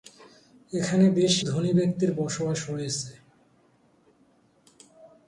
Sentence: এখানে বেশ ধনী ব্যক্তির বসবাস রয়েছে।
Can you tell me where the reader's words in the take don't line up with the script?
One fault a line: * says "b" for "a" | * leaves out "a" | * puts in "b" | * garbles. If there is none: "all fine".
all fine